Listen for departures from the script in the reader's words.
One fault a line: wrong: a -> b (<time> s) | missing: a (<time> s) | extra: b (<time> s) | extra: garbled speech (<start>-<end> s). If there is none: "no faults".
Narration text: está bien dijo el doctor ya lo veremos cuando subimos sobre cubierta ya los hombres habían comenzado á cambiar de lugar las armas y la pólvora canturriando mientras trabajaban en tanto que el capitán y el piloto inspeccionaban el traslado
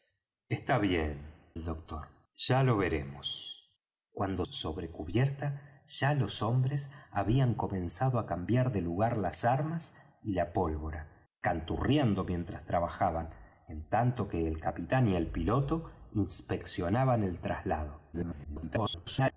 missing: dijo (1.6 s)
missing: subimos (4.5 s)
extra: garbled speech (18.1-19.3 s)